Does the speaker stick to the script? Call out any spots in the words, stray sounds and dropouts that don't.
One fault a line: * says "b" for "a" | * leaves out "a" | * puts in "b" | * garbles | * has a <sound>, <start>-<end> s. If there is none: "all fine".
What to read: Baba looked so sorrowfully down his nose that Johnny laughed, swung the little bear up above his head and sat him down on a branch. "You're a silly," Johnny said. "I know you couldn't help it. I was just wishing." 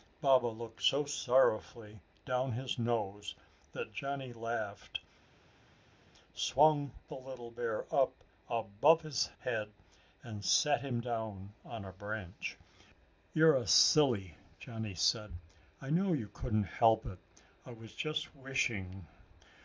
all fine